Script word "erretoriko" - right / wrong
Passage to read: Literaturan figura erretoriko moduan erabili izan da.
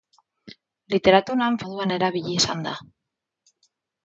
wrong